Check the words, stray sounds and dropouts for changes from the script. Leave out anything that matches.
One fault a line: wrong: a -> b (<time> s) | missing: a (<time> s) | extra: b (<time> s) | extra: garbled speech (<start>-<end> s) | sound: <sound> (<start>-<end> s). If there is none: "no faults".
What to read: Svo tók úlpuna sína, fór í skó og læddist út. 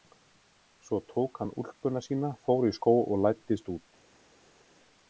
extra: hann (1.4 s)